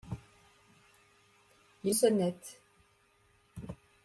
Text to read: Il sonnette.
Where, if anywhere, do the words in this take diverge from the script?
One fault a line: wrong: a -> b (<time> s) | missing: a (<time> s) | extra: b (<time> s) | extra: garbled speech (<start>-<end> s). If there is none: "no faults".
no faults